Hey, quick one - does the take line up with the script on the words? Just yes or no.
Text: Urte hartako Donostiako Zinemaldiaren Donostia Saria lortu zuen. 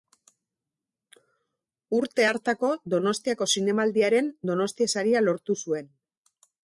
yes